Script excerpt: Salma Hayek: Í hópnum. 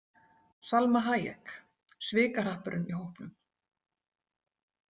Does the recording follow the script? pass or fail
fail